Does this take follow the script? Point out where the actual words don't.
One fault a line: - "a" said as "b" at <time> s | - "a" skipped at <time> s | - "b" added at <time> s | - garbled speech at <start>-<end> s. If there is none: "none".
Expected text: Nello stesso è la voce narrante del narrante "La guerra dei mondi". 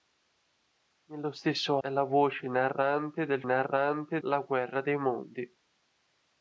none